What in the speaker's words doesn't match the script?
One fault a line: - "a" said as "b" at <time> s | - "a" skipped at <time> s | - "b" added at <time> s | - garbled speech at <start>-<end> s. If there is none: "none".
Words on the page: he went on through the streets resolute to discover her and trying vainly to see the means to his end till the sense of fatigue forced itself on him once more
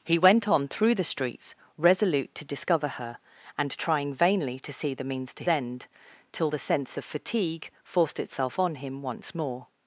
- "his" skipped at 5.4 s